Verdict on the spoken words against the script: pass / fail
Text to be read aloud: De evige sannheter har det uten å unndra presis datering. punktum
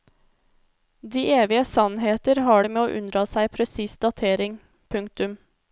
fail